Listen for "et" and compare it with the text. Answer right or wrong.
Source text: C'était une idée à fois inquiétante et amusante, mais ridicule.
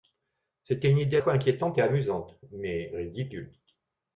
right